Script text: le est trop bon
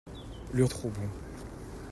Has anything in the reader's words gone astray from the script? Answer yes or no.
no